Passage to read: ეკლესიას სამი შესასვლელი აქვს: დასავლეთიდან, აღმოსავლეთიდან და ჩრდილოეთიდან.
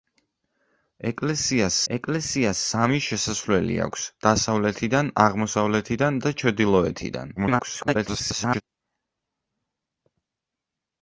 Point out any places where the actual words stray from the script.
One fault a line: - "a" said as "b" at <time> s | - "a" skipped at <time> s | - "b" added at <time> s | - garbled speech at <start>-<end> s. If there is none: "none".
- "ეკლესიას" added at 1.9 s
- garbled speech at 7.4-8.6 s